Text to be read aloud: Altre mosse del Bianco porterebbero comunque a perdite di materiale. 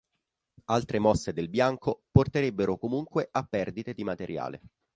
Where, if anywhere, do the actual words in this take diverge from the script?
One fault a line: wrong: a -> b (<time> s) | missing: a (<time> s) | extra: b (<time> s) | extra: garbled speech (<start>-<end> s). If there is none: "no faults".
no faults